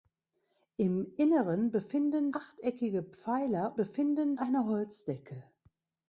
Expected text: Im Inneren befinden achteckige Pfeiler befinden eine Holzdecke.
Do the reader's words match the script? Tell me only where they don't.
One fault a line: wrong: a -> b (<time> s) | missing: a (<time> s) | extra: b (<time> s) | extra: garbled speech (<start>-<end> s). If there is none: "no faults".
no faults